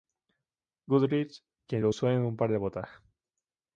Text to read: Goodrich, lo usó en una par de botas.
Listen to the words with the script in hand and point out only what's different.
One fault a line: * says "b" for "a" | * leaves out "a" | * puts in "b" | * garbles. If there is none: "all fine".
* puts in "quien"
* says "un" for "una"